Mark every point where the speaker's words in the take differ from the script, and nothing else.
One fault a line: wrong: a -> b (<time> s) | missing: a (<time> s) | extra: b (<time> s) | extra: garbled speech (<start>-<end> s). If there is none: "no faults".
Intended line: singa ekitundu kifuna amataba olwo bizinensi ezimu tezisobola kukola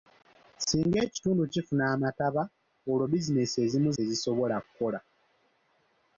no faults